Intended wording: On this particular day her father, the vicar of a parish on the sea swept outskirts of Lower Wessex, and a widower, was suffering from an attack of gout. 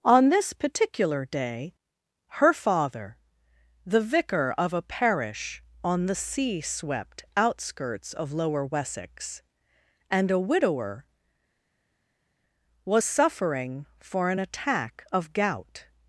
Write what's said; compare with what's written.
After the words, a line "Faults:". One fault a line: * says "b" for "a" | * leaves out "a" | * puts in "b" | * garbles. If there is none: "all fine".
On this particular day her father, the vicar of a parish on the sea swept outskirts of Lower Wessex, and a widower, was suffering for an attack of gout.
Faults:
* says "for" for "from"